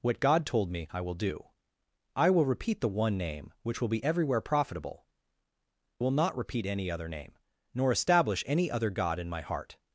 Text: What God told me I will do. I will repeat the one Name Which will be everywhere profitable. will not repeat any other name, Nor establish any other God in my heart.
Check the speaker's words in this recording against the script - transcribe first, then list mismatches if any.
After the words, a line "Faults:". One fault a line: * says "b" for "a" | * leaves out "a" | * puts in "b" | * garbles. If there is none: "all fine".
What God told me I will do. I will repeat the one Name Which will be everywhere profitable. will not repeat any other name, Nor establish any other God in my heart.
Faults:
all fine